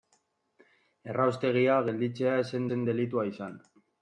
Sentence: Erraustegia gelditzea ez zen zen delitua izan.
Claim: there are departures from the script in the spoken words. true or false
false